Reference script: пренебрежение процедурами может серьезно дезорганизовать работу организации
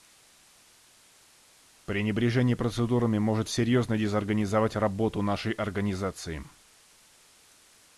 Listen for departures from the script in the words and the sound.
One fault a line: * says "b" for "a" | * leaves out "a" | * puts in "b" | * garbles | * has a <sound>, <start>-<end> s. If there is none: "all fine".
* puts in "нашей"